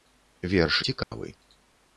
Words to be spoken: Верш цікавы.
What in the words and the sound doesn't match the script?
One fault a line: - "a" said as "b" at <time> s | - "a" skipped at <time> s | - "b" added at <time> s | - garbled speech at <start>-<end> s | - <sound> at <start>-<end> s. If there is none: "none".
- dropout at 1.0-1.1 s